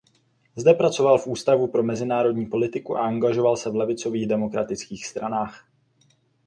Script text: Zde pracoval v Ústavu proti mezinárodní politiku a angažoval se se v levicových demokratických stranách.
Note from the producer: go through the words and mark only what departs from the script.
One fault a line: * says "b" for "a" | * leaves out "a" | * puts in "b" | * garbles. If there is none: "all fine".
* says "pro" for "proti"
* leaves out "se"